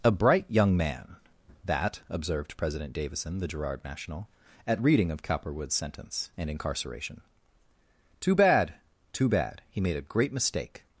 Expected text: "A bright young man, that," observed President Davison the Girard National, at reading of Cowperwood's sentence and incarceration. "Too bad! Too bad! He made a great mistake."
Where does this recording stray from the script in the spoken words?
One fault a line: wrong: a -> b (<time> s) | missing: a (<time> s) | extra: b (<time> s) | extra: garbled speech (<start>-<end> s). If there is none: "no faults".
no faults